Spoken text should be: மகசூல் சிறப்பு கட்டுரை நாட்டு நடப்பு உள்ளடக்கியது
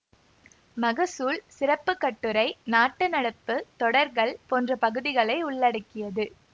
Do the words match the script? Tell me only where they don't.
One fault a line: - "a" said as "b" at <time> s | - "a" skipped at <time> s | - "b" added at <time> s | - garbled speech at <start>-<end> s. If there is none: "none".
- "தொடர்கள் போன்ற பகுதிகளை" added at 3.8 s